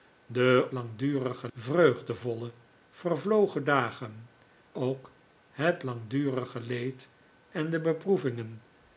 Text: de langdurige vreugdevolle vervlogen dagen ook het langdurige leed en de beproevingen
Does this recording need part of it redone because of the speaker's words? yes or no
no